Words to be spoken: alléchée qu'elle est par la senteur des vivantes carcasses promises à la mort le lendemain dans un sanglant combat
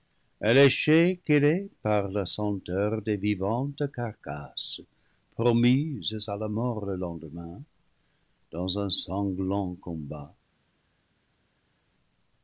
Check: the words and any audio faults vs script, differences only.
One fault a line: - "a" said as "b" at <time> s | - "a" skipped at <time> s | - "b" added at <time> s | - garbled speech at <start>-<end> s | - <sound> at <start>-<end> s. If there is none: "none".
none